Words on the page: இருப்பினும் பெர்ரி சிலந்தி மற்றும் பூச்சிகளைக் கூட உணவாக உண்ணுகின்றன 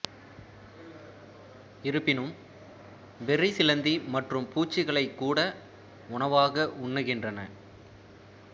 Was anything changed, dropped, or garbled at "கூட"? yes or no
no